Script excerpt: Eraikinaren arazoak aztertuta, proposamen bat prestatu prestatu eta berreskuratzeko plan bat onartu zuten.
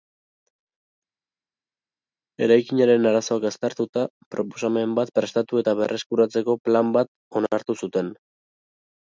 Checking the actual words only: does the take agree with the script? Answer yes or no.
no